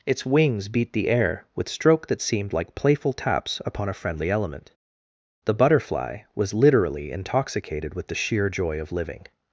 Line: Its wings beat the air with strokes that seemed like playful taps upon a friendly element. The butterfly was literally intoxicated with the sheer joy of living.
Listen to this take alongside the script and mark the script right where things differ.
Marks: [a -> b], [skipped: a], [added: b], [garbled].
Its wings beat the air with [strokes -> stroke] that seemed like playful taps upon a friendly element. The butterfly was literally intoxicated with the sheer joy of living.